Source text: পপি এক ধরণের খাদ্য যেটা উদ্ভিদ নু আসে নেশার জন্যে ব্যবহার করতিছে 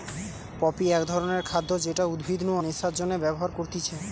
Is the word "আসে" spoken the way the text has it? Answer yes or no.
no